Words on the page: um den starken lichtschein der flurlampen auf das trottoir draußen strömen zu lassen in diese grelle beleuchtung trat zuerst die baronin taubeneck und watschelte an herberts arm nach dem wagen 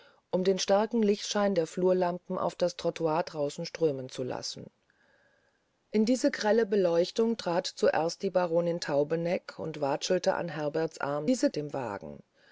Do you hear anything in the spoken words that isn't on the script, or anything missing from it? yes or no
yes